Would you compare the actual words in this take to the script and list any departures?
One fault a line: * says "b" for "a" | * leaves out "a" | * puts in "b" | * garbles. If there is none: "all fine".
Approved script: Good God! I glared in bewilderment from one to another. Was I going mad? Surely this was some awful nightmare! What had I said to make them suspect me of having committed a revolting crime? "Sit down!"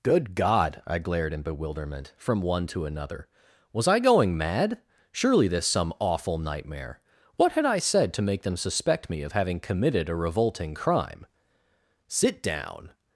* leaves out "was"